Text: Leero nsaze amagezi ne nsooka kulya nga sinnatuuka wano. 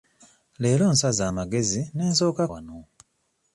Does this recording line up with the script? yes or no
no